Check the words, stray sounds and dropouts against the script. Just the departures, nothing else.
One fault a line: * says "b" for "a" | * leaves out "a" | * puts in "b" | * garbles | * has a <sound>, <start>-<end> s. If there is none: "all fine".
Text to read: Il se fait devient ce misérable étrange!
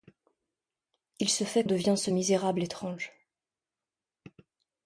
all fine